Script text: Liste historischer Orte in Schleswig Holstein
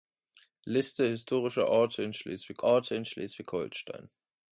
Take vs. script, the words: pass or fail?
fail